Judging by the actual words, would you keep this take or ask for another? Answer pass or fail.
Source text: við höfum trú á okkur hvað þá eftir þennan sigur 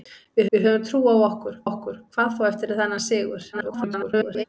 fail